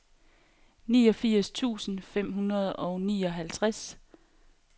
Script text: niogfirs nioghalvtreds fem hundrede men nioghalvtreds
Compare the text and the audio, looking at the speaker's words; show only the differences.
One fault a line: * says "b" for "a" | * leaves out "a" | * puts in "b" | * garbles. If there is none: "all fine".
* says "tusind" for "nioghalvtreds"
* says "og" for "men"